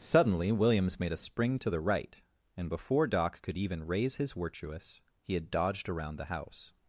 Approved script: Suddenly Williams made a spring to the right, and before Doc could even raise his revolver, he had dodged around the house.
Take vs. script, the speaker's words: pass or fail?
fail